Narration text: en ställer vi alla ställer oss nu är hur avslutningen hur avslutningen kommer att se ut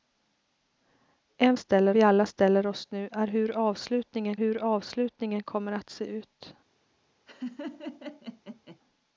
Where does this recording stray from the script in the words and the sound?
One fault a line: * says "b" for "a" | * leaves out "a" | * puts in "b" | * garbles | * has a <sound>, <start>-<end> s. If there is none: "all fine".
* has a laugh, 7.3-8.8 s